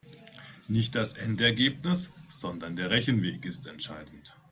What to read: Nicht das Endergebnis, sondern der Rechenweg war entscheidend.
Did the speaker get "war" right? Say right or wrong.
wrong